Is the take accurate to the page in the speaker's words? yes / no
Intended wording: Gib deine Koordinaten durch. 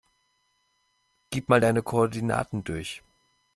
no